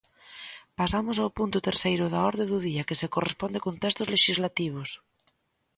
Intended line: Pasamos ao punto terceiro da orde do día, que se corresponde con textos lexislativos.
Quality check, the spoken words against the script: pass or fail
pass